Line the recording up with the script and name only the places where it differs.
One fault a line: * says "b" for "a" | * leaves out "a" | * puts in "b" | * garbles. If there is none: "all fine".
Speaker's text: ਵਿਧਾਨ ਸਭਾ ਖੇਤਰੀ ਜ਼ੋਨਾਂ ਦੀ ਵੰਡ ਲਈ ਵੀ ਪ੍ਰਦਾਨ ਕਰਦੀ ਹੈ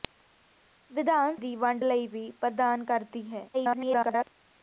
* leaves out "ਸਭਾ ਖੇਤਰੀ ਜ਼ੋਨਾਂ"
* garbles